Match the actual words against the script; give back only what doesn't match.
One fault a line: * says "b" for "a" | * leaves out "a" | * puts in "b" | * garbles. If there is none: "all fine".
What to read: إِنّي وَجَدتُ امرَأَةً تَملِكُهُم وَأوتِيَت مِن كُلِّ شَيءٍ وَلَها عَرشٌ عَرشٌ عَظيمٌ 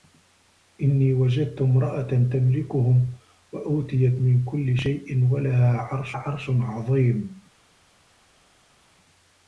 all fine